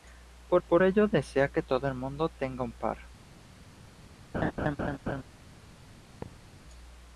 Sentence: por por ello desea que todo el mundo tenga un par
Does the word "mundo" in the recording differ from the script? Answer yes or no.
no